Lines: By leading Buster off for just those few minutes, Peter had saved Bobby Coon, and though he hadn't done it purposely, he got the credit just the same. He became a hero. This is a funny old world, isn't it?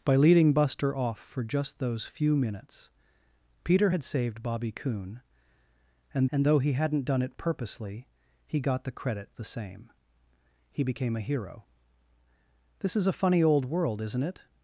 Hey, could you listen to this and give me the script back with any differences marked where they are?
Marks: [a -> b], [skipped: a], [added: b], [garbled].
By leading Buster off for just those few minutes, Peter had saved Bobby Coon, and [added: and] though he hadn't done it purposely, he got the credit [skipped: just] the same. He became a hero. This is a funny old world, isn't it?